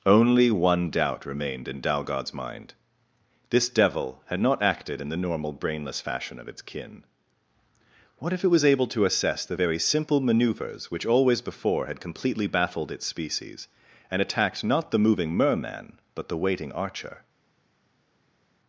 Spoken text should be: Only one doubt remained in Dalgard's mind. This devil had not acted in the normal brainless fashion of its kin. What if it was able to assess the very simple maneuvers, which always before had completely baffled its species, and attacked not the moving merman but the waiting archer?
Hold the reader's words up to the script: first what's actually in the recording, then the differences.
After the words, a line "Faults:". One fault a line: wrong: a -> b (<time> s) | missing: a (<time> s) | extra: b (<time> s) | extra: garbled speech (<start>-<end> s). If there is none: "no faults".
Only one doubt remained in Dalgard's mind. This devil had not acted in the normal brainless fashion of its kin. What if it was able to assess the very simple maneuvers, which always before had completely baffled its species, and attacked not the moving merman but the waiting archer?
Faults:
no faults